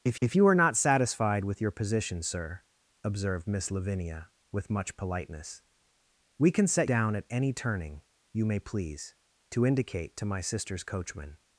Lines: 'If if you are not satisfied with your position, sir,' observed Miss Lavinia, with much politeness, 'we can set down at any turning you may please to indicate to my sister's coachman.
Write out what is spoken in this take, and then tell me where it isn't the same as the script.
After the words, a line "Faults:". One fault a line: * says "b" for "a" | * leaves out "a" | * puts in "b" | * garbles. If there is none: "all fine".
'If if you are not satisfied with your position, sir,' observed Miss Lavinia, with much politeness, 'we can set down at any turning you may please to indicate to my sister's coachman.
Faults:
all fine